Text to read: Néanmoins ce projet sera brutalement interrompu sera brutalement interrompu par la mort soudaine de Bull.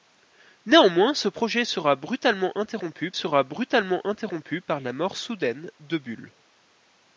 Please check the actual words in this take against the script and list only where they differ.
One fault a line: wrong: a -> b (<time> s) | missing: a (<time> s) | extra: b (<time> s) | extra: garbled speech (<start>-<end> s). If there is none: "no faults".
no faults